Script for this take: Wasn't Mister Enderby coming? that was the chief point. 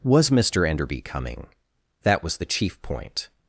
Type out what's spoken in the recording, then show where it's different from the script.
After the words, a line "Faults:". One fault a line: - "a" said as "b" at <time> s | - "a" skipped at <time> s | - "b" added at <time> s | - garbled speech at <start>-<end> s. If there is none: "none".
Was Mister Enderby coming? that was the chief point.
Faults:
- "Wasn't" said as "Was" at 0.0 s